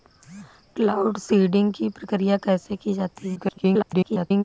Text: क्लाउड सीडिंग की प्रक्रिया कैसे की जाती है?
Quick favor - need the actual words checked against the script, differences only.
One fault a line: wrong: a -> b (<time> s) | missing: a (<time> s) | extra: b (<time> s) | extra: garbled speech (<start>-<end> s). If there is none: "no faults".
extra: garbled speech (3.4-4.4 s)